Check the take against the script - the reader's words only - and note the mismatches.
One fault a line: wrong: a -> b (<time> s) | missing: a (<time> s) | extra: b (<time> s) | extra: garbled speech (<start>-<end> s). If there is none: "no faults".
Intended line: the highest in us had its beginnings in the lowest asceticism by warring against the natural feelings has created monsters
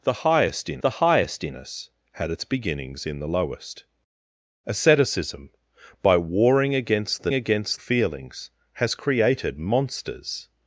extra: the highest in (0.8 s)
wrong: natural -> against (7.3 s)